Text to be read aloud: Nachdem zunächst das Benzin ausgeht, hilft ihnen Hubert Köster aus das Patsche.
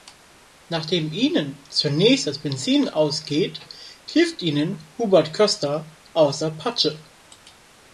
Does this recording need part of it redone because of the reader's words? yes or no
yes